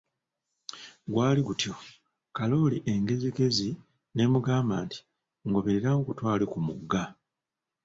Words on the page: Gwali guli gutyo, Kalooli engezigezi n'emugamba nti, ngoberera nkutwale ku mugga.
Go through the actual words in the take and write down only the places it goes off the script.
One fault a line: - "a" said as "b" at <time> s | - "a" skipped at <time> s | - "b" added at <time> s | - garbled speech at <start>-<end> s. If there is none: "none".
- "guli" skipped at 1.4 s